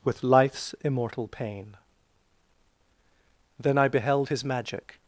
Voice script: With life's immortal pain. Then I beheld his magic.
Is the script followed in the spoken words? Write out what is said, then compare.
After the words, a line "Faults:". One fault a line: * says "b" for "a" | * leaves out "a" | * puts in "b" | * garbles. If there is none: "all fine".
With life's immortal pain. Then I beheld his magic.
Faults:
all fine